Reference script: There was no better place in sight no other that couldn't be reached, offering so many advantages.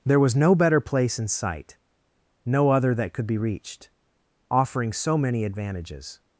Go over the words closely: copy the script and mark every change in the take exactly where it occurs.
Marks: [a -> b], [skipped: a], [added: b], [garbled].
There was no better place in sight no other that [couldn't -> could] be reached, offering so many advantages.